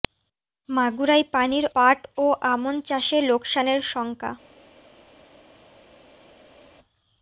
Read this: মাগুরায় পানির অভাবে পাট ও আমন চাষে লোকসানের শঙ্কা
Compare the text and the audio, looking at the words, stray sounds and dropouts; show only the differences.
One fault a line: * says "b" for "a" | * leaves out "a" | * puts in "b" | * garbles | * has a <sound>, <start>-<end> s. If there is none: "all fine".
* leaves out "অভাবে"